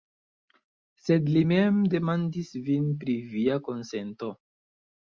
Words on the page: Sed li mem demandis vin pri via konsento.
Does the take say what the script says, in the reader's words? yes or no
yes